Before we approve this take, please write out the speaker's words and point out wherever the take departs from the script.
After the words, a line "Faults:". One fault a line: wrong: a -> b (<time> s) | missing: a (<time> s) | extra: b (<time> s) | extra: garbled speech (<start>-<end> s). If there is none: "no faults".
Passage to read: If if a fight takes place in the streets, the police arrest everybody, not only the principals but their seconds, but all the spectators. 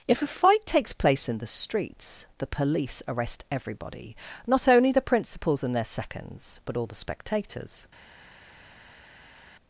If a fight takes place in the streets, the police arrest everybody, not only the principals and their seconds, but all the spectators.
Faults:
missing: if (0.2 s)
wrong: but -> and (5.6 s)